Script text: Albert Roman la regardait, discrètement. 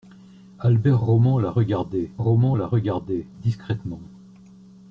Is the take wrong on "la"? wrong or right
right